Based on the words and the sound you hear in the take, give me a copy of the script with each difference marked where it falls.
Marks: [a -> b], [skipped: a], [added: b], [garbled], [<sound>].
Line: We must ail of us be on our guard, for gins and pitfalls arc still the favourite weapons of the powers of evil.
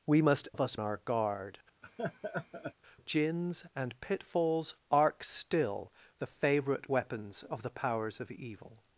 We must [skipped: ail] of us [skipped: be on] our guard, [skipped: for] [laugh] gins and pitfalls arc still the favourite weapons of the powers of evil.